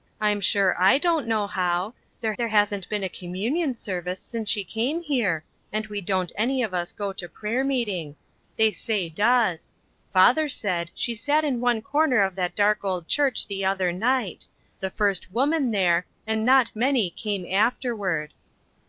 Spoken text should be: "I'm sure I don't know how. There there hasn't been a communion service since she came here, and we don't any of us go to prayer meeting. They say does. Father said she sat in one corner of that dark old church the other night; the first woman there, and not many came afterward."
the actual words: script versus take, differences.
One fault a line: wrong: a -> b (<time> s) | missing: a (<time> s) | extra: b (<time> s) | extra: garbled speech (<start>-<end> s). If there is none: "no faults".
no faults